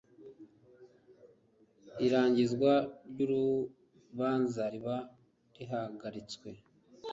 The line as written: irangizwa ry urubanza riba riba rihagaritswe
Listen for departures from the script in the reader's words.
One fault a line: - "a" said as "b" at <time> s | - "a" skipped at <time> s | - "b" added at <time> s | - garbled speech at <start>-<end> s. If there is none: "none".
- "riba" skipped at 4.9 s